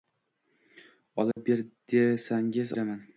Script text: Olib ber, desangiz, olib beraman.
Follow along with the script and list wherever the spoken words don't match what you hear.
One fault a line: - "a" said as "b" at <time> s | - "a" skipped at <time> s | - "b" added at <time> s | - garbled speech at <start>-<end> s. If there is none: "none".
- "olib" skipped at 2.8 s